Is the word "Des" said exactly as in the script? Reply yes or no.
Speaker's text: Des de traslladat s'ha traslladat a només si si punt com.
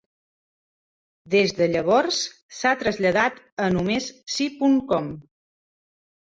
yes